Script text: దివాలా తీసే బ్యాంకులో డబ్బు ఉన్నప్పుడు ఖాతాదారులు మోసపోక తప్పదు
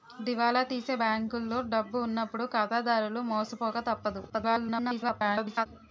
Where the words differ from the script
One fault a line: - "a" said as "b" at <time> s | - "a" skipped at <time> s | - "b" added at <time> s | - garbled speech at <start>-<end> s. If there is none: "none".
- garbled speech at 4.3-5.7 s